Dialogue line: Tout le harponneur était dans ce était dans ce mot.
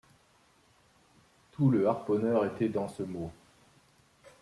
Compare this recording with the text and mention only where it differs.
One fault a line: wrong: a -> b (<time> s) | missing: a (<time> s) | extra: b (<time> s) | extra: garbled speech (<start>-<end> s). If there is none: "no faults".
missing: était dans ce (3.0 s)